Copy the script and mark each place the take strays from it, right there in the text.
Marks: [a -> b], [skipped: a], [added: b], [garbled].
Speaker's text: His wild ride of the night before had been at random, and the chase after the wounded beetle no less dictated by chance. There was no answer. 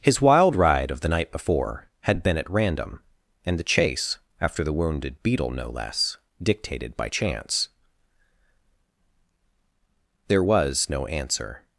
His wild ride of the night before had been at random, and the chase after the wounded beetle no less dictated by chance. There was no answer.